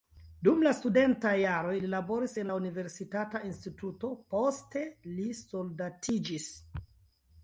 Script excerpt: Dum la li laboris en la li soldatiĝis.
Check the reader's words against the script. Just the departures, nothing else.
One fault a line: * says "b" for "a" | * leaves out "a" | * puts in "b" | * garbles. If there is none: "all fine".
* puts in "studentaj jaroj"
* puts in "universitata instituto poste"